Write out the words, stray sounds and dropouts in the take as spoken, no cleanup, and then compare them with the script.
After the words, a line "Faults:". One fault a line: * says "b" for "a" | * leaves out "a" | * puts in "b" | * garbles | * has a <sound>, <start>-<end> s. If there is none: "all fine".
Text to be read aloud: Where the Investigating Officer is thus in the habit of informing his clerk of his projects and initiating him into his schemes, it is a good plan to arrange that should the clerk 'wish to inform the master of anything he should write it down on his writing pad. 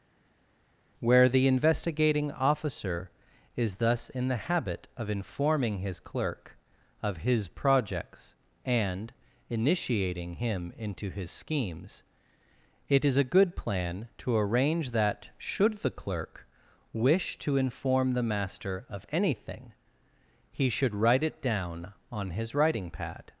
Where the Investigating Officer is thus in the habit of informing his clerk of his projects and initiating him into his schemes, it is a good plan to arrange that should the clerk 'wish to inform the master of anything he should write it down on his writing pad.
Faults:
all fine